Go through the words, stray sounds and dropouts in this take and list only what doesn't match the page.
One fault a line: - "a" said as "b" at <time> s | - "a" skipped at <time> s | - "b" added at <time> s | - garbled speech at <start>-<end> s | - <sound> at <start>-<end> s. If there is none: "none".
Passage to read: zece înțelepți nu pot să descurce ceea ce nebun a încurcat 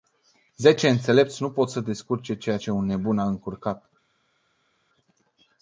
- "un" added at 2.7 s